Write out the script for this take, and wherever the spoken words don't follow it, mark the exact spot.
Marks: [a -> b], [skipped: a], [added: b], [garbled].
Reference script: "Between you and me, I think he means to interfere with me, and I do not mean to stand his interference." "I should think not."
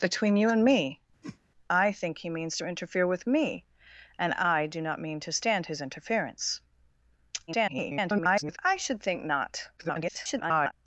"Between you and me, I think he means to interfere with me, and I do not mean to stand his interference." [garbled] "I should think not." [garbled]